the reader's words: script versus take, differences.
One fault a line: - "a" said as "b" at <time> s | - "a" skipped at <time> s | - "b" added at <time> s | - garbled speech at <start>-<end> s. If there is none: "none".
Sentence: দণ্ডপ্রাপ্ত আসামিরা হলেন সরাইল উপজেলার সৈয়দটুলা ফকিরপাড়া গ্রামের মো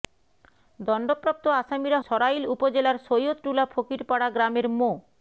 - "হলেন" skipped at 2.0 s